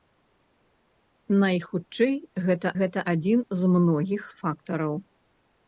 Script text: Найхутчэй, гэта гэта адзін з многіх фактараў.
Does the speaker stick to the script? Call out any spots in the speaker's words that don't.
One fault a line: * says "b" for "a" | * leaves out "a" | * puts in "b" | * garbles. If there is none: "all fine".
all fine